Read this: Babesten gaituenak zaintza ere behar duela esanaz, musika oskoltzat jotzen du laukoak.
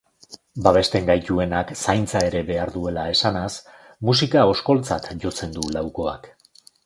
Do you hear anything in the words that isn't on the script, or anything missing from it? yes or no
no